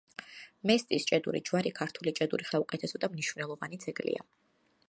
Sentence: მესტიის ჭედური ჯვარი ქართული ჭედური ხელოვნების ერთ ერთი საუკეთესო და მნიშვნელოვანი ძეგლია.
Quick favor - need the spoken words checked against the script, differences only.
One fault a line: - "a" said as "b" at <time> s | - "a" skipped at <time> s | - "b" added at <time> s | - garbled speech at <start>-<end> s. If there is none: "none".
- "ხელოვნების ერთ ერთი" skipped at 2.5 s